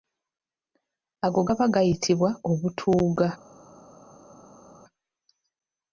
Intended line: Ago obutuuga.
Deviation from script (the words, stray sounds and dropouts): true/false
true